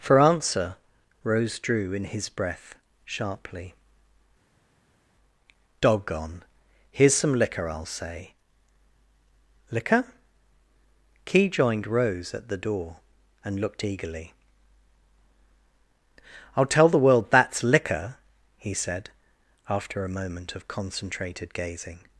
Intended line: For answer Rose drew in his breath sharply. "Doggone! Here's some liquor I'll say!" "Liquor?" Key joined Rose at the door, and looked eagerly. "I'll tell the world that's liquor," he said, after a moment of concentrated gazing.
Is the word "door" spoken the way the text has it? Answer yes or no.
yes